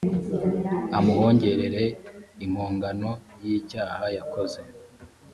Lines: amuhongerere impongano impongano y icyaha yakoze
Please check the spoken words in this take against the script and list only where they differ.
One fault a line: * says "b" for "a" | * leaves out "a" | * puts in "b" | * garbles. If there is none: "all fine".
* leaves out "impongano"